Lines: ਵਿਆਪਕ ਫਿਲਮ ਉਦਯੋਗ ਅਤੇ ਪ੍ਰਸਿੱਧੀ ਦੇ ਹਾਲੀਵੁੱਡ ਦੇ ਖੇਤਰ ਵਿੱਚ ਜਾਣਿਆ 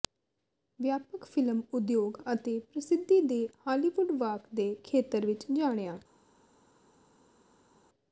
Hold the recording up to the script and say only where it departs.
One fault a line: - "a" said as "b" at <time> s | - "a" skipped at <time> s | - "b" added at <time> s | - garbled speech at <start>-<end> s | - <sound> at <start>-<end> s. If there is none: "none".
- "ਵਾਕ" added at 4.2 s